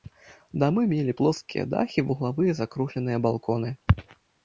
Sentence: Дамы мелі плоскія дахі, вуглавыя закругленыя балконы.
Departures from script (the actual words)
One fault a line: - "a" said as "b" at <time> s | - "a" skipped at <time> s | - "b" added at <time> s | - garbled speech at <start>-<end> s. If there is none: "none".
none